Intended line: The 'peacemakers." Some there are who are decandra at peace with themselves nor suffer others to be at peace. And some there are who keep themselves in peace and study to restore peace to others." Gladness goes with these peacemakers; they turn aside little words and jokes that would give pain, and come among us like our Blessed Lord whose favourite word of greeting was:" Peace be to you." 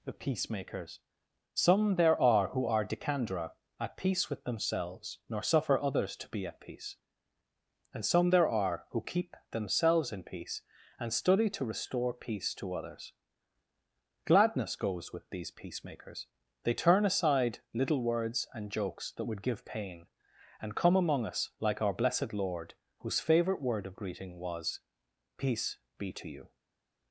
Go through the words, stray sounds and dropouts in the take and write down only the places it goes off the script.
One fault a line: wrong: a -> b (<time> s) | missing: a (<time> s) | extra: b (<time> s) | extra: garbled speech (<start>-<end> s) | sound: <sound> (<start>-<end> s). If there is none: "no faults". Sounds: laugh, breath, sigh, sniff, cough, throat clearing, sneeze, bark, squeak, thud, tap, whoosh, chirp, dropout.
no faults